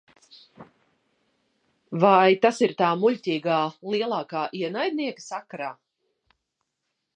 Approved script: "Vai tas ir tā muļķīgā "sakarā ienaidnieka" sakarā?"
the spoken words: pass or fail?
fail